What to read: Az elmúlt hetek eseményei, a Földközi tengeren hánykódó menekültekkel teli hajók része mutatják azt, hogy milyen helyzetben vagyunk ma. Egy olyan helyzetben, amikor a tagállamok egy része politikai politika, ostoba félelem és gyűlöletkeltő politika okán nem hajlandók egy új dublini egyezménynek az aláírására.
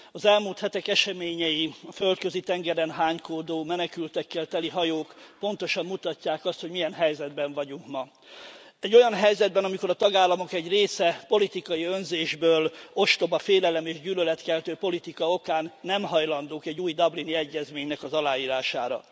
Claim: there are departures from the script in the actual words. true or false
true